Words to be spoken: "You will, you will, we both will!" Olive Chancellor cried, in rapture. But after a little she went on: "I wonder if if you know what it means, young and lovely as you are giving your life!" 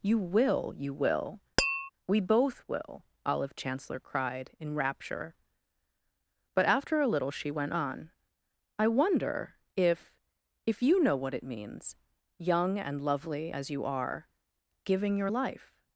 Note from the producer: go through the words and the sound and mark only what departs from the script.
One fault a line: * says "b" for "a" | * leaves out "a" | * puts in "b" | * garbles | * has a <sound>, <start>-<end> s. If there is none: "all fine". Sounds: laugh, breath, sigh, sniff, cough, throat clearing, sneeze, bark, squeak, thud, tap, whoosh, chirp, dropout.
* has a tap, 1.6-1.9 s